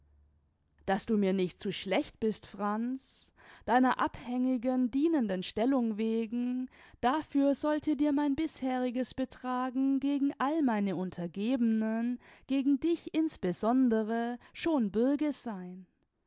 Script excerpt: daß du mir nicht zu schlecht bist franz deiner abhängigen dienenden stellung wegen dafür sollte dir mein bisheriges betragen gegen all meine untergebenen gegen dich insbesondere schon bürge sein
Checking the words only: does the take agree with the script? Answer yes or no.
yes